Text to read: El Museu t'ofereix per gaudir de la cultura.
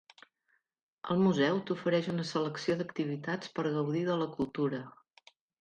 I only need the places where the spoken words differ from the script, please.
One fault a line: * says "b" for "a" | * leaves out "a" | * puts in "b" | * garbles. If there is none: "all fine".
* puts in "una selecció d'activitats"